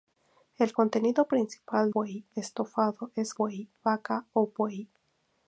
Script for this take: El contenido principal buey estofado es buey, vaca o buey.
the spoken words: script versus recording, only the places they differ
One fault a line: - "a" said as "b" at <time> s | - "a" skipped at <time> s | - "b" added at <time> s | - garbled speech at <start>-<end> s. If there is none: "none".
none